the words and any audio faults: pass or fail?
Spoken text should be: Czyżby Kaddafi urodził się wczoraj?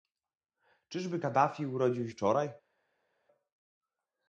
fail